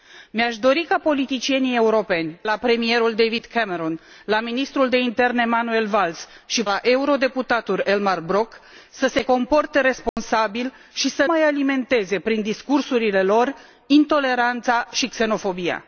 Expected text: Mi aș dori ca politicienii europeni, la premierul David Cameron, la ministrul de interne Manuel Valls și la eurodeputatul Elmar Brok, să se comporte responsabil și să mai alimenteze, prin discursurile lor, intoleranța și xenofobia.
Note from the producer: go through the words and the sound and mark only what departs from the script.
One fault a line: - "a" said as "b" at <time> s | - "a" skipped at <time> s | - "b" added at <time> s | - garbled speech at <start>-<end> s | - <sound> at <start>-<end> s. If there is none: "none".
- dropout at 10.1-10.2 s